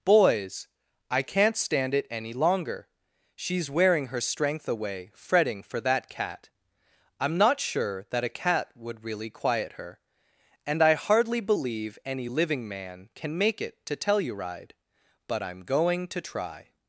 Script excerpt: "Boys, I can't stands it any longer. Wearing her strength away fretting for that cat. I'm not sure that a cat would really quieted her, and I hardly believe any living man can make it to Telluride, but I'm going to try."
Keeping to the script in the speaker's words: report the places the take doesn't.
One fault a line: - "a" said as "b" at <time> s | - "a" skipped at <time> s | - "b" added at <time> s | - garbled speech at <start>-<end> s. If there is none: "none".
- "stands" said as "stand" at 1.6 s
- "She's" added at 3.4 s
- "quieted" said as "quiet" at 9.3 s